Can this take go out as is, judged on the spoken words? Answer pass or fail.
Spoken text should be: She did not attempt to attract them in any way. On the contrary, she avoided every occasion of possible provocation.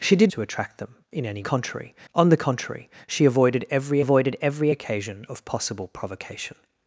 fail